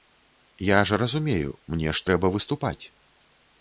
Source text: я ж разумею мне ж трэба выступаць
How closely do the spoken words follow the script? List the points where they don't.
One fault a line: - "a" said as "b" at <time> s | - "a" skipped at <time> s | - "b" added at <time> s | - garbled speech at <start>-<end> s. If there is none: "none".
none